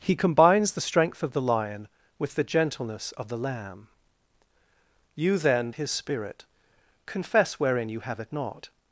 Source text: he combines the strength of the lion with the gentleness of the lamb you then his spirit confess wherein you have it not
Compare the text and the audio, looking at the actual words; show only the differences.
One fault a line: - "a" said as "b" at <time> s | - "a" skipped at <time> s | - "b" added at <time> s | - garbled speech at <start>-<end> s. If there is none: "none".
none